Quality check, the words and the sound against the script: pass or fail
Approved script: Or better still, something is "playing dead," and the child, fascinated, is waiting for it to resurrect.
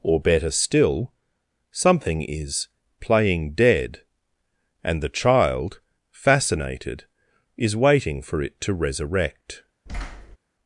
fail